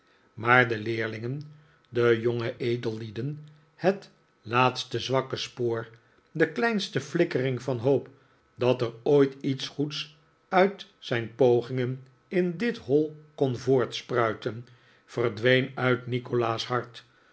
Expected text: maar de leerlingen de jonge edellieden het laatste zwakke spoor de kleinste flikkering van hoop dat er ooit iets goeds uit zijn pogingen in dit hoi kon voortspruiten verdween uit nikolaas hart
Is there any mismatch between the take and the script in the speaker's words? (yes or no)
no